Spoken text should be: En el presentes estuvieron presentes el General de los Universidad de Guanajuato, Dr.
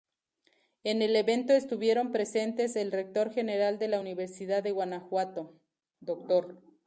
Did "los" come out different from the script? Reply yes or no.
yes